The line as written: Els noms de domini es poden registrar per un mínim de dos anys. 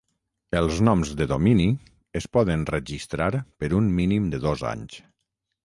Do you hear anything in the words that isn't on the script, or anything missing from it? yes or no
no